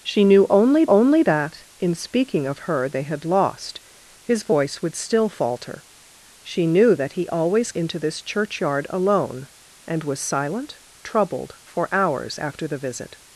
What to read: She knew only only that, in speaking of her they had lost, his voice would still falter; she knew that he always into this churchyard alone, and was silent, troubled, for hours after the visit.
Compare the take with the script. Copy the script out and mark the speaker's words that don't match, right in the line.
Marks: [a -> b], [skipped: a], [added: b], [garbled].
She knew only only that, in speaking of her they had lost, his voice would still falter; she knew that he always into this churchyard alone, and was silent, troubled, for hours after the visit.